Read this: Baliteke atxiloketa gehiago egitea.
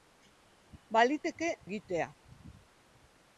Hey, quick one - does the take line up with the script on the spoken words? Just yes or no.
no